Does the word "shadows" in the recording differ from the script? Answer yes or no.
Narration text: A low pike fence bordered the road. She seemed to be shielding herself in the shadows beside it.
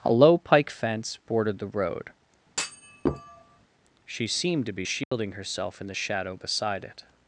yes